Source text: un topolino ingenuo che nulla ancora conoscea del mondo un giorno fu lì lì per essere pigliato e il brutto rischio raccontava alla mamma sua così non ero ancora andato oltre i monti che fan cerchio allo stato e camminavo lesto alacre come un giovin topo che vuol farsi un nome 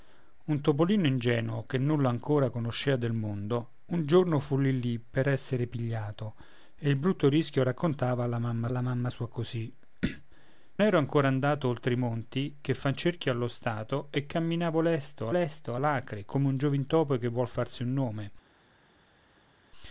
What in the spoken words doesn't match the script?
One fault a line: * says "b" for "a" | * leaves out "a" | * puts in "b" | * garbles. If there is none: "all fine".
* puts in "alla mamma"
* leaves out "non"
* puts in "lesto"